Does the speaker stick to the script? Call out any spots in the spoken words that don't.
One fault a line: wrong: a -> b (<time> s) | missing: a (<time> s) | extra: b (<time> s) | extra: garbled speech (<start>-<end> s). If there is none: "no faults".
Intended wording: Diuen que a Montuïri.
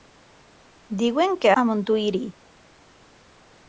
no faults